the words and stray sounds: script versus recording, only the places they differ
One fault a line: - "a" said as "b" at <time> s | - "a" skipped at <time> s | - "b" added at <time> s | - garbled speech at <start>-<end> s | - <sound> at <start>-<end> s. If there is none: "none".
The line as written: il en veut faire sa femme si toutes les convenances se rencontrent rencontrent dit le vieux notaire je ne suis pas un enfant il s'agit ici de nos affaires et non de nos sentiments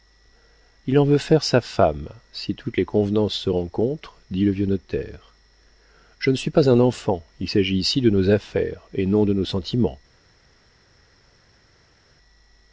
- "rencontrent" skipped at 4.2 s